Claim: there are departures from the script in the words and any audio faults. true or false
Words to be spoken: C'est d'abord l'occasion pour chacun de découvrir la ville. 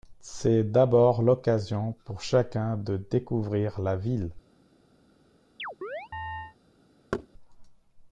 true